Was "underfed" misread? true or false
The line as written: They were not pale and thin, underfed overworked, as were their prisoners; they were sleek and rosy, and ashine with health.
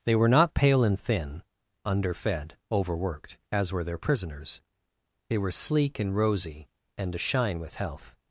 false